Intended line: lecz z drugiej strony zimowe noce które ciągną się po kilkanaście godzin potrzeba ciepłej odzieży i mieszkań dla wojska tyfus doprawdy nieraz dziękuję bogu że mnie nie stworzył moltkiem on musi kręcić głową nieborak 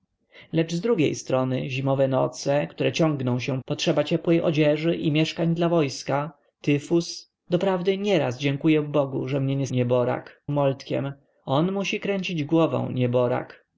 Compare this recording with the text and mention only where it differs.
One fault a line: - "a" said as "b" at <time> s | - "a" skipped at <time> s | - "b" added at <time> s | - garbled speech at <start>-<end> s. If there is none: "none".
- "po kilkanaście godzin" skipped at 3.6 s
- "stworzył" said as "nieborak" at 9.7 s